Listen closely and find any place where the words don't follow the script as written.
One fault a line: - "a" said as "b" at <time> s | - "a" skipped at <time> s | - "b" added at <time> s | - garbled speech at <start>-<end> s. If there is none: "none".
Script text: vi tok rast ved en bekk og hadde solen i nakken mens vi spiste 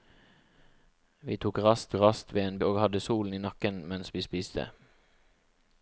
- "rast" added at 2.0 s
- "bekk" skipped at 2.6 s